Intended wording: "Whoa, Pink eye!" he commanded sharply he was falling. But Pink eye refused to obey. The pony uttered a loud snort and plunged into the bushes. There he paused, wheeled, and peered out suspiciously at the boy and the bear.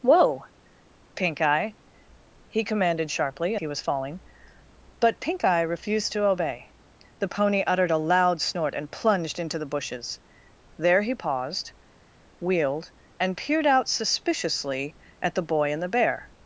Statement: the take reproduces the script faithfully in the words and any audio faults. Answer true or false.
true